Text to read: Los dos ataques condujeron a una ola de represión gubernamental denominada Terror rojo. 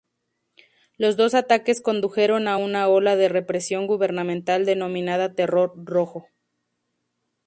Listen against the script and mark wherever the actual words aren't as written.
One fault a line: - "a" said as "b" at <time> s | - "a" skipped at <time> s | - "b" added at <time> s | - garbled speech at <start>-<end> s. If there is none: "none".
none